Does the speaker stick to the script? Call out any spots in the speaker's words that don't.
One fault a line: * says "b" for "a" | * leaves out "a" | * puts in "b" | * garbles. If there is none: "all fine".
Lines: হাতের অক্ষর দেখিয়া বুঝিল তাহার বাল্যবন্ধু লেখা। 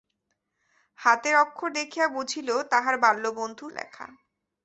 all fine